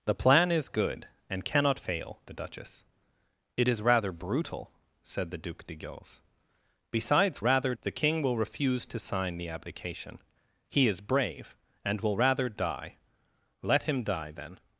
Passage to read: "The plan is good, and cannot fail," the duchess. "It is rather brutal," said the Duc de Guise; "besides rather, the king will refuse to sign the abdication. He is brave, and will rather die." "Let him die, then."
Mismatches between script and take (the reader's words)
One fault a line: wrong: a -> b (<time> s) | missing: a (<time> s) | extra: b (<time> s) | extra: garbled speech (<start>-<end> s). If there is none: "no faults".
no faults